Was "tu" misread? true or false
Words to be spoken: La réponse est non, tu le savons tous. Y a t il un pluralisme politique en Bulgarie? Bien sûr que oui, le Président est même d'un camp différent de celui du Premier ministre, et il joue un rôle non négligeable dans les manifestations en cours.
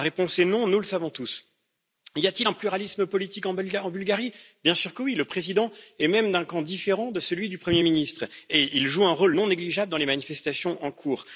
true